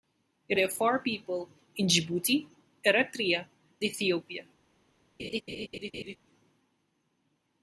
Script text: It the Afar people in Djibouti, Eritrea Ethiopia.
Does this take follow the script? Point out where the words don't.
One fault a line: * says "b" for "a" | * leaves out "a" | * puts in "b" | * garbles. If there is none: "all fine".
all fine